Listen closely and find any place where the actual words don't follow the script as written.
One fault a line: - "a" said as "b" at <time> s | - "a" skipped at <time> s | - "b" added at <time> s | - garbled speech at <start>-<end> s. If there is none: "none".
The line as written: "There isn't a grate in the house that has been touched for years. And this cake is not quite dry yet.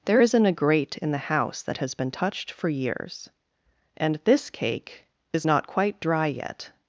none